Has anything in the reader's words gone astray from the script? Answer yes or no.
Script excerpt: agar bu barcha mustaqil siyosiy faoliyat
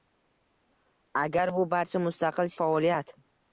yes